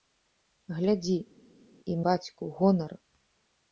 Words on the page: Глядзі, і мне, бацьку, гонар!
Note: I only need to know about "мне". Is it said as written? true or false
false